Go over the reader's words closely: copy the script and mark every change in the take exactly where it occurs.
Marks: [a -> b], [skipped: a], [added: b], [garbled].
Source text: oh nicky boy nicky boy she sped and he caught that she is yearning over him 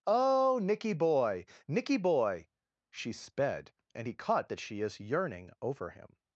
oh nicky boy nicky boy she sped and he caught that she is yearning over him